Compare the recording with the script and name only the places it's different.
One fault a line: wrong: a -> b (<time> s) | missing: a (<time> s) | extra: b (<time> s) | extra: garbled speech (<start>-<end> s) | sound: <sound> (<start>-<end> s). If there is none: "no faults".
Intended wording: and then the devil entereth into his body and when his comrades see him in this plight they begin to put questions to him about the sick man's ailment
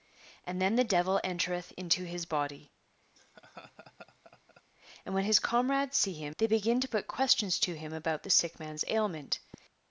sound: laugh (3.2-4.6 s)
missing: in this plight (6.4 s)